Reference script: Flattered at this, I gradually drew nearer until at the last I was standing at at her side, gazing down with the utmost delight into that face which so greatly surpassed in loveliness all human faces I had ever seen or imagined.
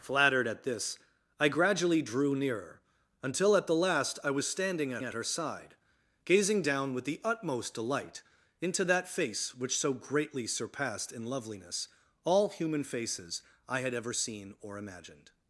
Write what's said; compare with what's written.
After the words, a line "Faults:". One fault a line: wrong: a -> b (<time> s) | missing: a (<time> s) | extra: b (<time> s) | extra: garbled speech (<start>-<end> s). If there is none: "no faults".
Flattered at this, I gradually drew nearer until at the last I was standing at at her side, gazing down with the utmost delight into that face which so greatly surpassed in loveliness all human faces I had ever seen or imagined.
Faults:
no faults